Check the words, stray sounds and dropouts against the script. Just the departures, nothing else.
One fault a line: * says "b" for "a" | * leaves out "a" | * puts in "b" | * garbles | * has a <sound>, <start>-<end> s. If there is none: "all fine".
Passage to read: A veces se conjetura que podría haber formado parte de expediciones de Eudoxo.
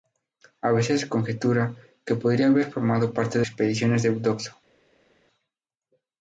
all fine